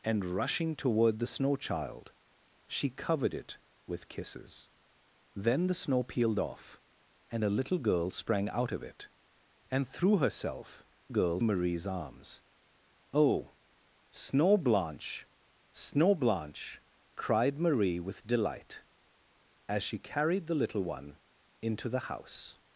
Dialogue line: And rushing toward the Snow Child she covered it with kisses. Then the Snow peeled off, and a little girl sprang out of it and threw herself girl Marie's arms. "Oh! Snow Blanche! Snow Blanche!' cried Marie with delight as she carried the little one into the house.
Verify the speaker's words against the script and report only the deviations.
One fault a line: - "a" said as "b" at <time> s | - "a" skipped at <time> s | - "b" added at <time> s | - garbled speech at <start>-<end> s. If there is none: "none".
none